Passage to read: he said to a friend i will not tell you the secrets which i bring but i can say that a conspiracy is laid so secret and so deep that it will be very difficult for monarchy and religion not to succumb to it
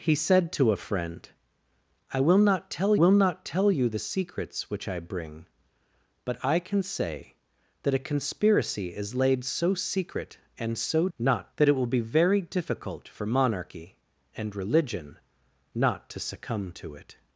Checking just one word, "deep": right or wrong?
wrong